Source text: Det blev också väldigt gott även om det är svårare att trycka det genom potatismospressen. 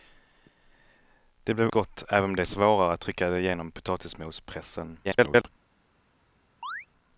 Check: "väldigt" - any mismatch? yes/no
yes